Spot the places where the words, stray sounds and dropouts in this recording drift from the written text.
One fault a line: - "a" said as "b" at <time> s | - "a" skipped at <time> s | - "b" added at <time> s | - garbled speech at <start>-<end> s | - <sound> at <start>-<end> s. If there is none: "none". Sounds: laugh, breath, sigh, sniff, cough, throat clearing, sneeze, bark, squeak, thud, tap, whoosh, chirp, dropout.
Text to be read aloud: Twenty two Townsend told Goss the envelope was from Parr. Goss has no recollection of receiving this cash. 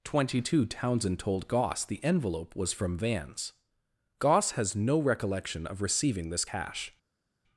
- "Parr" said as "Vans" at 3.0 s